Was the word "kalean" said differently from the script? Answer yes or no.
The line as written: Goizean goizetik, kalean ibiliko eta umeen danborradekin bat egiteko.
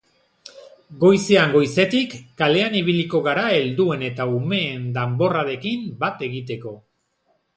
no